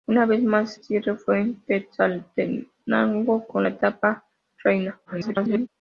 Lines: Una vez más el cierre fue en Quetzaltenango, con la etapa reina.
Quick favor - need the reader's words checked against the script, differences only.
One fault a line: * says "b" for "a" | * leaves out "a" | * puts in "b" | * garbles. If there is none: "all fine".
* leaves out "el"
* garbles